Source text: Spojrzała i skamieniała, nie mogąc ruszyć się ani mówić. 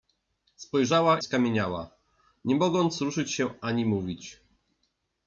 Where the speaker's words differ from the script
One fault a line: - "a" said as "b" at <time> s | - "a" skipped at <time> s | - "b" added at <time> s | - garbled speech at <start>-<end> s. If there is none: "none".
- "i" skipped at 1.2 s